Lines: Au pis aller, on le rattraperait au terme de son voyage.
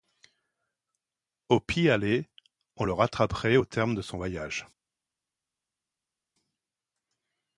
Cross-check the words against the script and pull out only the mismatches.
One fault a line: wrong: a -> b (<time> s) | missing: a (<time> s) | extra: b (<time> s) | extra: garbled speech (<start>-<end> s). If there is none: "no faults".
no faults